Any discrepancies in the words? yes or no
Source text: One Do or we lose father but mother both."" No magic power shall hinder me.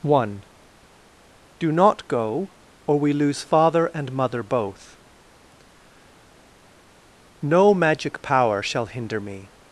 yes